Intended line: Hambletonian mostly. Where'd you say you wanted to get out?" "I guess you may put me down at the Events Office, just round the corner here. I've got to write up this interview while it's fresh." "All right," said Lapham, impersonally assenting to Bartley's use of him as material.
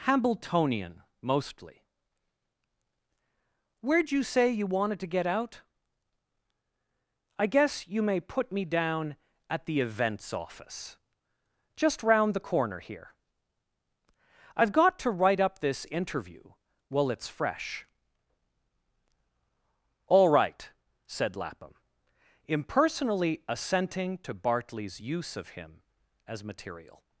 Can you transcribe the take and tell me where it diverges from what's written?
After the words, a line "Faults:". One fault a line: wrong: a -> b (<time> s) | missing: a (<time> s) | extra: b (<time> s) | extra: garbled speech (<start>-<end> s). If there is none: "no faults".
Hambletonian mostly. Where'd you say you wanted to get out?" "I guess you may put me down at the Events Office, just round the corner here. I've got to write up this interview while it's fresh." "All right," said Lapham, impersonally assenting to Bartley's use of him as material.
Faults:
no faults